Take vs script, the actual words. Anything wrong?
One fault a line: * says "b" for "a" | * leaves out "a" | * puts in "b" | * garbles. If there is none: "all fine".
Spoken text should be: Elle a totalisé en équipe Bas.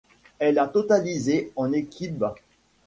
all fine